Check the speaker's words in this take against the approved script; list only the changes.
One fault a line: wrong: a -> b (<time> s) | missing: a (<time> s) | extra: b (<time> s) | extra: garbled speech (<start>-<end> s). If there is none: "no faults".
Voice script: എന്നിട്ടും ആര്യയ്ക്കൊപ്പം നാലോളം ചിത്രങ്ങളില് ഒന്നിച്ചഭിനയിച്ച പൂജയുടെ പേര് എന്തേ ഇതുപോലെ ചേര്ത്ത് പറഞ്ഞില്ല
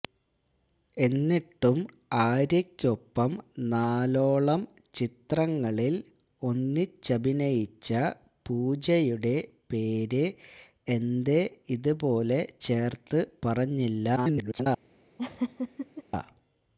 extra: garbled speech (14.2-14.7 s)